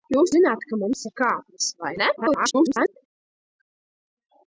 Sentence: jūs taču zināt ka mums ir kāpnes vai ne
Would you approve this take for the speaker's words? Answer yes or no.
no